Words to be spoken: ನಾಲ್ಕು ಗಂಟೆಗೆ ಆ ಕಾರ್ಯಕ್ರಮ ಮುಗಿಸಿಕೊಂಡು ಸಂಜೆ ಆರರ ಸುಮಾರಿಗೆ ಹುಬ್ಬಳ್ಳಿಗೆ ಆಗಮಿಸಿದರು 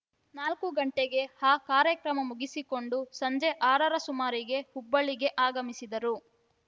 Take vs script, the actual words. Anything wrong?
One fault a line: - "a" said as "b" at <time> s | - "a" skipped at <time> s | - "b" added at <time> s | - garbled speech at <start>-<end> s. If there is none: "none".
none